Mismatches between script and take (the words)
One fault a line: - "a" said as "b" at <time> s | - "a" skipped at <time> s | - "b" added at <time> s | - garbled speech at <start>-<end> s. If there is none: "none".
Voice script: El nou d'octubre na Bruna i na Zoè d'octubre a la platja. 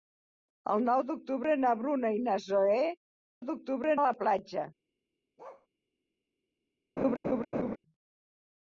none